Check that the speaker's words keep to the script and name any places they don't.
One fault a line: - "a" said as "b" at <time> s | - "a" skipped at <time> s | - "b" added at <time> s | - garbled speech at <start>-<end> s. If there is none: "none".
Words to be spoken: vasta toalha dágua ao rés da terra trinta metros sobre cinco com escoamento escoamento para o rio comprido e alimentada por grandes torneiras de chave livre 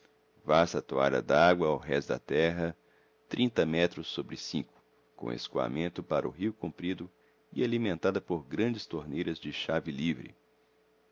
- "escoamento" skipped at 6.0 s